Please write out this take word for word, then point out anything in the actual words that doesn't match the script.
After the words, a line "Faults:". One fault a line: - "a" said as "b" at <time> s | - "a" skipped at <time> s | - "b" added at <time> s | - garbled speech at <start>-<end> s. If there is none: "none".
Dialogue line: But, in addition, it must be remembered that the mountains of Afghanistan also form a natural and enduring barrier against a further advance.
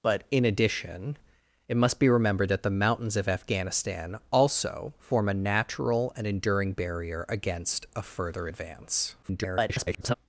But, in addition, it must be remembered that the mountains of Afghanistan also form a natural and enduring barrier against a further advance. [garbled]
Faults:
- garbled speech at 9.2-10.1 s